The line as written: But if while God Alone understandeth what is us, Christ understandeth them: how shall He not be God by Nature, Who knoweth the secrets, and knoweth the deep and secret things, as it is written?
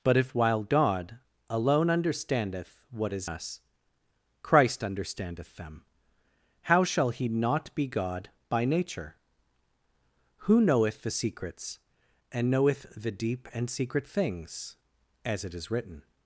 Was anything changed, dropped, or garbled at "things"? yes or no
no